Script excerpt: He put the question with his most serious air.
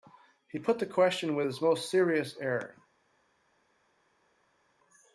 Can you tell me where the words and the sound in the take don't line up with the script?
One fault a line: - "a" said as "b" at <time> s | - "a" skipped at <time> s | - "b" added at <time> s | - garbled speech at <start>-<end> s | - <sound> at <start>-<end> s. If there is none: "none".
none